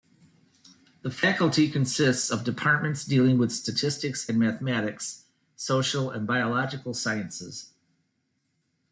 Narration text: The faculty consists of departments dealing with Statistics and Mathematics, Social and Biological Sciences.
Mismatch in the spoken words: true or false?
false